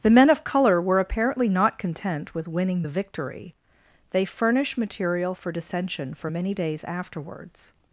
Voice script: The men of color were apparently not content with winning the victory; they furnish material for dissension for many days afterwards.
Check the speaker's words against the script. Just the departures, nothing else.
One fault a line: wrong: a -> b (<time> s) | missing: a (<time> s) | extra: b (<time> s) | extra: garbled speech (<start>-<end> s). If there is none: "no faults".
no faults